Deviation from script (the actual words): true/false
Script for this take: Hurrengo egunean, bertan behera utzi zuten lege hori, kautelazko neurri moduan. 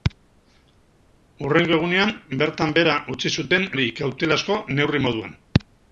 true